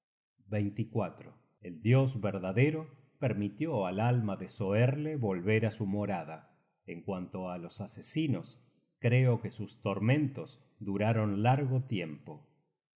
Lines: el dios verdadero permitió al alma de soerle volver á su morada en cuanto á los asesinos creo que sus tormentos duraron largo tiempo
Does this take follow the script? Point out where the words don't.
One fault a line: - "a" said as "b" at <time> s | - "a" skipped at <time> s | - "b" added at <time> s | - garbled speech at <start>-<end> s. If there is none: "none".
none